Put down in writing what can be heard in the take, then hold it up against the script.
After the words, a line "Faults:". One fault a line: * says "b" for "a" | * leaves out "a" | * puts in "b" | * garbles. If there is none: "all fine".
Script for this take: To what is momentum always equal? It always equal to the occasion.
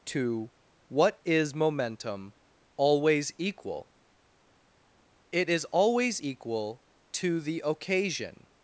To what is momentum always equal? It is always equal to the occasion.
Faults:
* puts in "is"